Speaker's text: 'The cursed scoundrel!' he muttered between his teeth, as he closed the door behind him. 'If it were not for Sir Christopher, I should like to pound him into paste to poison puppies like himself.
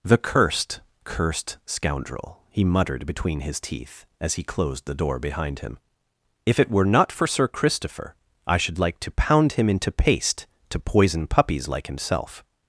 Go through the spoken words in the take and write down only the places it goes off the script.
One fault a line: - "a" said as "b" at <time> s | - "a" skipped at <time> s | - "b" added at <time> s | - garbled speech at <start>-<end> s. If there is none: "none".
- "cursed" added at 1.0 s